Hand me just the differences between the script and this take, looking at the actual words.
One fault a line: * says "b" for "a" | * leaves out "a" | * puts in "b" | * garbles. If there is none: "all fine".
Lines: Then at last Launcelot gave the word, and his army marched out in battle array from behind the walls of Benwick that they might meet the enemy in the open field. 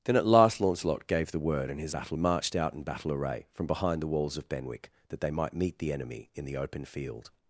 * says "battle" for "army"